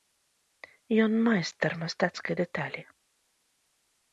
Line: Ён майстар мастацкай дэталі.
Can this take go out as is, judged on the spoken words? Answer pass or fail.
pass